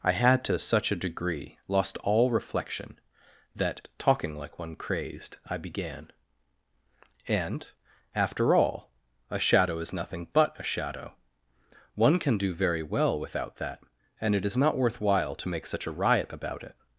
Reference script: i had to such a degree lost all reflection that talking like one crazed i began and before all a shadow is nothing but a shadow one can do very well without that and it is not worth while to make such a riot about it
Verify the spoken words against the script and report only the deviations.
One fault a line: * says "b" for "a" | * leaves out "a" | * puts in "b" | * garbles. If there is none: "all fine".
* says "after" for "before"